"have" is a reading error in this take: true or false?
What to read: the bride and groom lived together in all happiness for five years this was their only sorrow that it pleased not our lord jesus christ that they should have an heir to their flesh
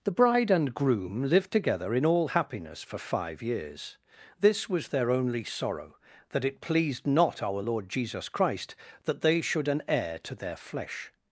true